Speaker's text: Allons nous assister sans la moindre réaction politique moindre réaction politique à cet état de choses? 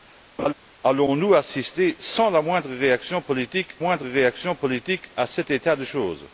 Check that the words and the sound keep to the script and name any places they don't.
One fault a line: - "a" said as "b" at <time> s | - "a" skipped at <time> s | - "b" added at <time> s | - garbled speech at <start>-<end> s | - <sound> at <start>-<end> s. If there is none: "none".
- laugh at 0.4-0.5 s